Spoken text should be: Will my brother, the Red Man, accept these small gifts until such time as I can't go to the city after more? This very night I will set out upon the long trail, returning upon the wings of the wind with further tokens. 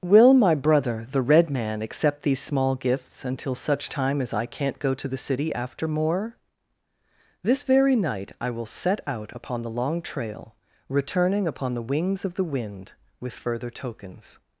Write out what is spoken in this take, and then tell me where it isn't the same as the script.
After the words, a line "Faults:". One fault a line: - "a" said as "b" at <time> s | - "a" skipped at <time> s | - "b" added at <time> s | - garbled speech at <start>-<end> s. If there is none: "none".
Will my brother, the Red Man, accept these small gifts until such time as I can't go to the city after more? This very night I will set out upon the long trail, returning upon the wings of the wind with further tokens.
Faults:
none